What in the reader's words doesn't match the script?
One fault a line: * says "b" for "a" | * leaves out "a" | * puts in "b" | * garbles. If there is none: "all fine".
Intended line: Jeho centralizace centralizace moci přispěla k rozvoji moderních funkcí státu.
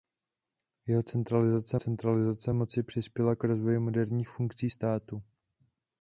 all fine